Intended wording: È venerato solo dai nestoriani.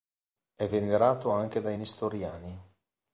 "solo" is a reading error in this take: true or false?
true